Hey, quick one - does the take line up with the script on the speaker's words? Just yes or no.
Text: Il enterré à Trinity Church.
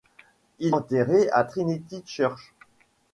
yes